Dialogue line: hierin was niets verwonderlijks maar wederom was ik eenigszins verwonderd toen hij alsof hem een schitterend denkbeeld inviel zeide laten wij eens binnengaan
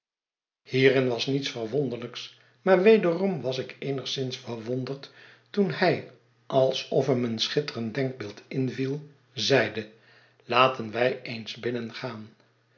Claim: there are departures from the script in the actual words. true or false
false